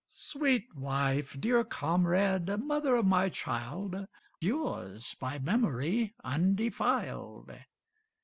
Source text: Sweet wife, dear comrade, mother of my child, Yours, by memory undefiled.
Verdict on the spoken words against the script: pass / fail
pass